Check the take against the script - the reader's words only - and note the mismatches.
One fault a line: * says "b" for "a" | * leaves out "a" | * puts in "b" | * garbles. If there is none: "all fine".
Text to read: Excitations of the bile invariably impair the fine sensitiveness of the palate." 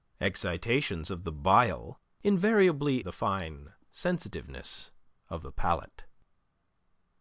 * leaves out "impair"